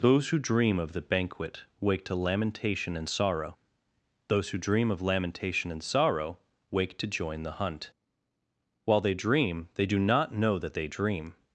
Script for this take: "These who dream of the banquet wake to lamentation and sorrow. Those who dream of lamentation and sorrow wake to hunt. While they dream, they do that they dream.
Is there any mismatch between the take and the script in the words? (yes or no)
yes